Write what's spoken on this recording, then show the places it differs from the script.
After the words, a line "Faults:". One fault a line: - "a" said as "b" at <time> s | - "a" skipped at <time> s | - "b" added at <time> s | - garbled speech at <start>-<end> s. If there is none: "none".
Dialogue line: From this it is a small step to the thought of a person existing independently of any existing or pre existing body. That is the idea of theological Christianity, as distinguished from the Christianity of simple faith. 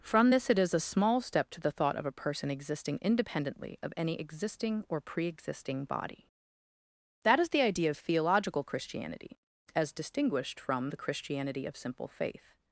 From this it is a small step to the thought of a person existing independently of any existing or pre existing body. That is the idea of theological Christianity, as distinguished from the Christianity of simple faith.
Faults:
none